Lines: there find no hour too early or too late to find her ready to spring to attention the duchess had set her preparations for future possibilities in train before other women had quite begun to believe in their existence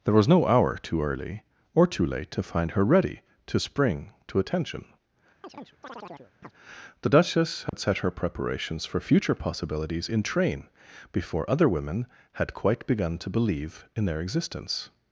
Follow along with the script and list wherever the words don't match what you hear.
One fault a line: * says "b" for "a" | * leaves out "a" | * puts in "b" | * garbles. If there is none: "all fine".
* says "was" for "find"